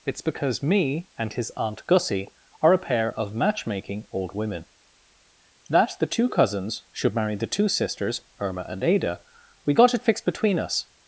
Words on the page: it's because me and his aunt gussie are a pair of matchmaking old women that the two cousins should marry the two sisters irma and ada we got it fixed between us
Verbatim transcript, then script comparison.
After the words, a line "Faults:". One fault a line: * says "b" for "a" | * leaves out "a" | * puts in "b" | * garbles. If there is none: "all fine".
it's because me and his aunt gussie are a pair of matchmaking old women that the two cousins should marry the two sisters irma and ada we got it fixed between us
Faults:
all fine